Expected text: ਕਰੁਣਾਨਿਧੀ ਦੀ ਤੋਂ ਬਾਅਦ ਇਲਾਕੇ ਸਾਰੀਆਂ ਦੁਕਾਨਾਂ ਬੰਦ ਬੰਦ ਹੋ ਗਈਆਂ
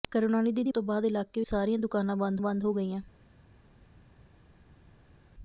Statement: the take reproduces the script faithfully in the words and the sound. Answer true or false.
true